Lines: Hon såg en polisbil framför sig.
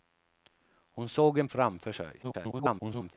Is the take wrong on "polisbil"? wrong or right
wrong